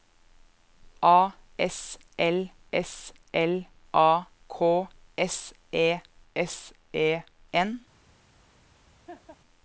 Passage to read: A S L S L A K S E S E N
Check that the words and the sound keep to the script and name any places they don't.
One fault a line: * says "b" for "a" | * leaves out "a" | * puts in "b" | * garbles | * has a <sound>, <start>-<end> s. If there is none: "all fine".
* has a laugh, 9.1-9.4 s